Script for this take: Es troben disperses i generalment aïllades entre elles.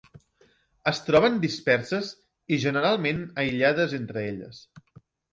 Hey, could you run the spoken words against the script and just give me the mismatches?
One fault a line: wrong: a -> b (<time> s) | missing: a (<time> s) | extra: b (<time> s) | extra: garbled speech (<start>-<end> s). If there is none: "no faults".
no faults